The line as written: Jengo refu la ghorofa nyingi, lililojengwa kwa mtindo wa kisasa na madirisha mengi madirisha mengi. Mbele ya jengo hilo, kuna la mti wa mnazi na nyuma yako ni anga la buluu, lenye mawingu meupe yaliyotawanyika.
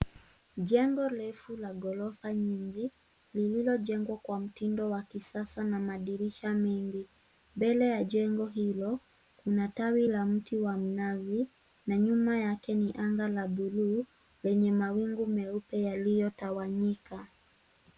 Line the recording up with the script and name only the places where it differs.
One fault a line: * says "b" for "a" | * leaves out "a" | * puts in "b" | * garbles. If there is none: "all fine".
* leaves out "madirisha mengi"
* puts in "tawi"
* says "yake" for "yako"